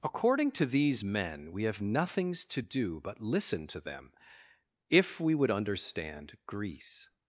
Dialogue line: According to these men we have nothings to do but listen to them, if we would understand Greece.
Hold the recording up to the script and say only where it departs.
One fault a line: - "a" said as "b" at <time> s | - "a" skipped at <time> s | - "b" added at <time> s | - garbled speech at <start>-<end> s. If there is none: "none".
none